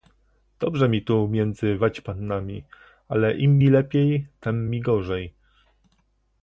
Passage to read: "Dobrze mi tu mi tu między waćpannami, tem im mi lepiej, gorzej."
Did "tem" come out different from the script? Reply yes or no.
yes